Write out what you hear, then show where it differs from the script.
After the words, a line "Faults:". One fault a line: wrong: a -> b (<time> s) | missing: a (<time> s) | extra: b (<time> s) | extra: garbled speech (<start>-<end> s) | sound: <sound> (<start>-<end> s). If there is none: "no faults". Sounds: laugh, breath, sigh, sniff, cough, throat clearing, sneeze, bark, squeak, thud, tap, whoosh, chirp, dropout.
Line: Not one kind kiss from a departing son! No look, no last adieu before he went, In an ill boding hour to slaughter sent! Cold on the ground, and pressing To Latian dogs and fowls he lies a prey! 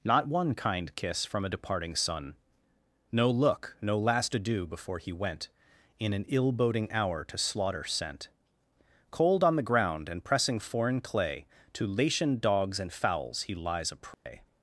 Not one kind kiss from a departing son! No look, no last adieu before he went, In an ill boding hour to slaughter sent! Cold on the ground, and pressing foreign clay, To Latian dogs and fowls he lies a prey!
Faults:
extra: foreign clay (10.6 s)
sound: dropout (14.1-14.3 s)